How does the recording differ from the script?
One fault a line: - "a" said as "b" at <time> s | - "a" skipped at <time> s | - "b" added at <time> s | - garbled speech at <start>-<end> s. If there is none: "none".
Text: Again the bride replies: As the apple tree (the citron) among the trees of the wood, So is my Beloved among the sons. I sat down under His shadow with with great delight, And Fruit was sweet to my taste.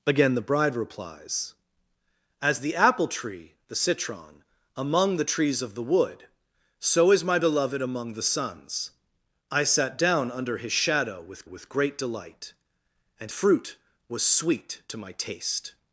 none